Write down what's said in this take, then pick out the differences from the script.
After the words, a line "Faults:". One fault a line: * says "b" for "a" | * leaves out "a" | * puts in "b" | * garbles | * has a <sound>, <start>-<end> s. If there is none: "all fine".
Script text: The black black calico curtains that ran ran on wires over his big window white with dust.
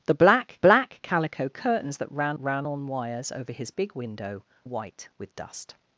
The black black calico curtains that ran ran on wires over his big window white with dust.
Faults:
all fine